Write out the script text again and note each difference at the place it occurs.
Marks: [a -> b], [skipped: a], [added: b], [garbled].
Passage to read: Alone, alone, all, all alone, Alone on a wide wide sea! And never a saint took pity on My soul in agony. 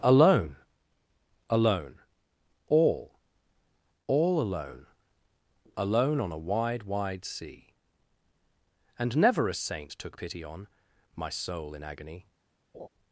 Alone, alone, all, all alone, Alone on a wide wide sea! And never a saint took pity on My soul in agony.